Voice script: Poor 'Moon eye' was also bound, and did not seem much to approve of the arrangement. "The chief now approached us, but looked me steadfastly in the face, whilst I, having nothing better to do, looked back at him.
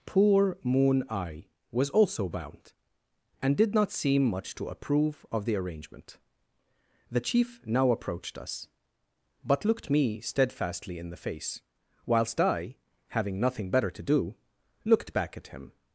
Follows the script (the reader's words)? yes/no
yes